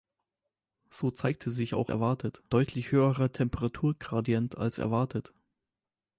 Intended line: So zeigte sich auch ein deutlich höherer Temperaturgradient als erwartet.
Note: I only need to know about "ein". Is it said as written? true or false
false